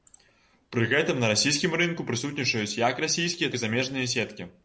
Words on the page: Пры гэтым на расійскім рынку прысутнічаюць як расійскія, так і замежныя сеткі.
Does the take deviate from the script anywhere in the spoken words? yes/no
yes